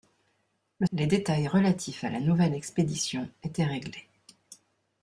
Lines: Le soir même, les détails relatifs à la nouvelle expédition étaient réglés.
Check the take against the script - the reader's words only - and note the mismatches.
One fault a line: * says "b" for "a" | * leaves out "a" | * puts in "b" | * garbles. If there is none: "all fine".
* leaves out "soir même"